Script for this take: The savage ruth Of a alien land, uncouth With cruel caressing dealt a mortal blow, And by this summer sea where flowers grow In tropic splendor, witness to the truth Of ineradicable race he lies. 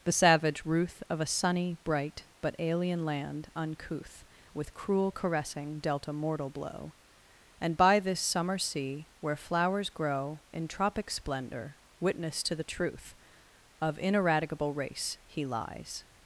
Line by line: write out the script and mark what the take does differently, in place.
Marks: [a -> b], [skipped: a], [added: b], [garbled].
The savage ruth Of a [added: sunny bright but] alien land, uncouth With cruel caressing dealt a mortal blow, And by this summer sea where flowers grow In tropic splendor, witness to the truth Of ineradicable race he lies.